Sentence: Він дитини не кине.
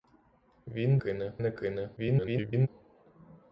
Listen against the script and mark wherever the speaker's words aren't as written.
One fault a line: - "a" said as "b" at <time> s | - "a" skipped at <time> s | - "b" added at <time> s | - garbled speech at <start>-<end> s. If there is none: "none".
- "дитини" said as "кине" at 0.9 s
- garbled speech at 2.0-2.7 s